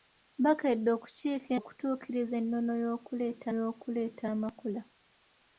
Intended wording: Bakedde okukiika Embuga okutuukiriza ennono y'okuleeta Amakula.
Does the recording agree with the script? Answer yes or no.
no